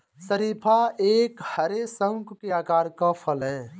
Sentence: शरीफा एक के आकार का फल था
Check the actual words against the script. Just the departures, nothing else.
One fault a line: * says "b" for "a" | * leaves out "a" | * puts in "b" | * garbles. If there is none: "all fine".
* puts in "हरे शंकु"
* says "है" for "था"